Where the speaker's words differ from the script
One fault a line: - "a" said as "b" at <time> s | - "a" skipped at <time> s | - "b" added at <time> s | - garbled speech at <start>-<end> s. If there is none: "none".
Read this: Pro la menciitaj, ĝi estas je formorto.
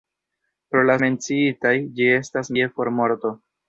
none